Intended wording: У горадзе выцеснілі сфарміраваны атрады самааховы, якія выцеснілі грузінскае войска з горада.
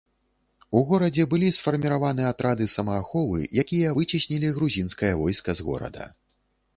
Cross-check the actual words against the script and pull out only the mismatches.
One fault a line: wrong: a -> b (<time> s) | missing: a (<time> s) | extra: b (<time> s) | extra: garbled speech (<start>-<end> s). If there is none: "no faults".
wrong: выцеснілі -> былі (1.3 s)